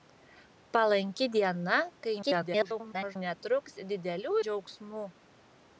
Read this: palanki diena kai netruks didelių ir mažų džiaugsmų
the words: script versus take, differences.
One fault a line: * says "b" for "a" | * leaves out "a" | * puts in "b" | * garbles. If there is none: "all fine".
* garbles
* leaves out "ir mažų"